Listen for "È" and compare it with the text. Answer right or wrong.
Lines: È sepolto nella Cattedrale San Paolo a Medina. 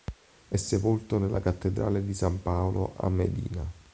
right